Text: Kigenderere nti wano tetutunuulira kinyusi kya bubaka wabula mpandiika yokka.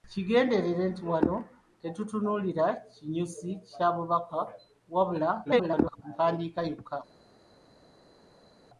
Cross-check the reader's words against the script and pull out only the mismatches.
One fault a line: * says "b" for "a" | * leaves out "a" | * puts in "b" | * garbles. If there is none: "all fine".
* garbles